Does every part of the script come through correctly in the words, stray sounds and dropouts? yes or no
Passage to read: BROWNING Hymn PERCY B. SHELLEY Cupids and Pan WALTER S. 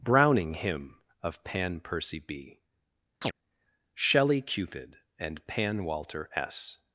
no